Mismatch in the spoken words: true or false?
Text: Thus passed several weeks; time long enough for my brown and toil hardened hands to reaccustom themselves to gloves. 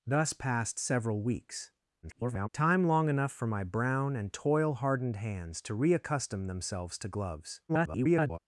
true